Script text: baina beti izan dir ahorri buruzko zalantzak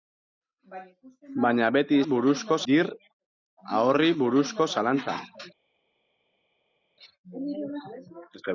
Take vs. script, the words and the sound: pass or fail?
fail